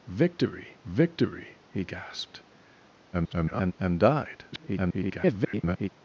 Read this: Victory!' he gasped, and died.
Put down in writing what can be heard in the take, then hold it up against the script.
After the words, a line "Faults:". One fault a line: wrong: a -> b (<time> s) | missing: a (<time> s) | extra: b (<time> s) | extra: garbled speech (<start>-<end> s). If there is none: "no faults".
Victory victory!' he gasped, [garbled] and died. [garbled]
Faults:
extra: victory (0.8 s)
extra: garbled speech (3.1-3.7 s)
extra: garbled speech (4.5-5.9 s)